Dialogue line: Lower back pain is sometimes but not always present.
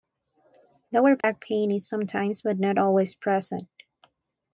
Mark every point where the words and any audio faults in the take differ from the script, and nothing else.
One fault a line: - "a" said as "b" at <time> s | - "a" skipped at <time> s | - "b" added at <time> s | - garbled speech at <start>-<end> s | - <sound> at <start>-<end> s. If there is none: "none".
- dropout at 1.2-1.2 s